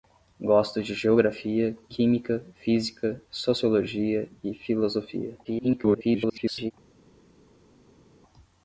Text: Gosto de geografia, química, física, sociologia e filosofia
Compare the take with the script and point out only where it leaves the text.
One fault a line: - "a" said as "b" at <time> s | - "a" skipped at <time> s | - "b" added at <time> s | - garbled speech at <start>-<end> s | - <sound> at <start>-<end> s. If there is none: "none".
- garbled speech at 5.4-6.7 s